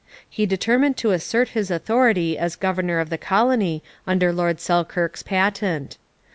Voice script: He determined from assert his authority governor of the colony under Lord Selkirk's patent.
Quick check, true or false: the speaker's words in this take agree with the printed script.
false